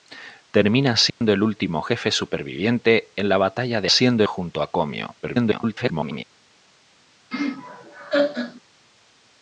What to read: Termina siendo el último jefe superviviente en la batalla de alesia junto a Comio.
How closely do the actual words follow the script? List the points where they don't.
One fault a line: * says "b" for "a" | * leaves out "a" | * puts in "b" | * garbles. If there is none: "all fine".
* says "siendo" for "alesia"
* garbles